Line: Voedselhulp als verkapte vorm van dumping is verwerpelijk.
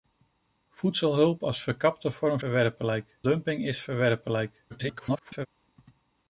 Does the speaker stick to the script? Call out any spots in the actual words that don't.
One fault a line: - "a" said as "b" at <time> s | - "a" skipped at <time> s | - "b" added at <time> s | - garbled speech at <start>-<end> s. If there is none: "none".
- "van" said as "verwerpelijk" at 2.4 s
- garbled speech at 4.7-5.5 s